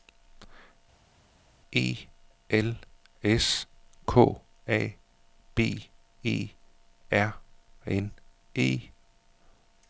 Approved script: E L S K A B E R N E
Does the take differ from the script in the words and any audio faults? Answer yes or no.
no